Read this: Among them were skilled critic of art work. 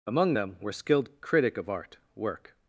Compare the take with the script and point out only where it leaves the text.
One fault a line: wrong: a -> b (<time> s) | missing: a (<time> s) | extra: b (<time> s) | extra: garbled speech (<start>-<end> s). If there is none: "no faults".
no faults